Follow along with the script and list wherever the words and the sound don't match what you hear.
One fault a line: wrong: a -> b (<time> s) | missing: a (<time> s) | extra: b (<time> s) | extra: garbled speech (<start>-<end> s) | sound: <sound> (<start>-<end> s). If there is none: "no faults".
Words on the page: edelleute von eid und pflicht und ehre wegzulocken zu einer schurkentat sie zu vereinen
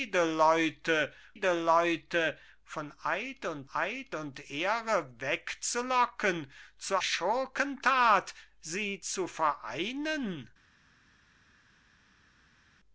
extra: edelleute (1.3 s)
wrong: pflicht -> eid (3.7 s)
missing: einer (7.0 s)